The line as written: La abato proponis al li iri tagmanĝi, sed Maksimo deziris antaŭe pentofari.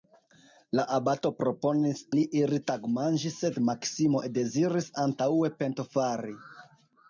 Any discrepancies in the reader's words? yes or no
yes